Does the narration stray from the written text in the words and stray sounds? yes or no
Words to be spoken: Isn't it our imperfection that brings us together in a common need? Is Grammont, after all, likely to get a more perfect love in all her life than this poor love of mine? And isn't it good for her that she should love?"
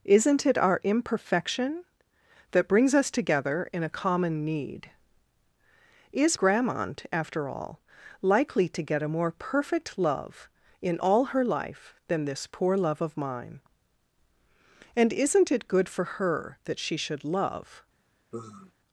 yes